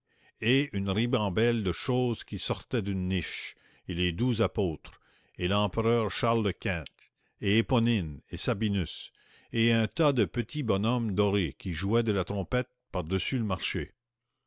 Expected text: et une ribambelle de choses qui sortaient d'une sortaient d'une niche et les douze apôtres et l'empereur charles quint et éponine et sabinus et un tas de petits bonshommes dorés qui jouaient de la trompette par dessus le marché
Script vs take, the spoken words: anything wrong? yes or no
yes